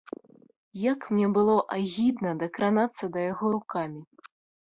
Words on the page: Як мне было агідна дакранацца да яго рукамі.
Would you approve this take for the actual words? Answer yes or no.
yes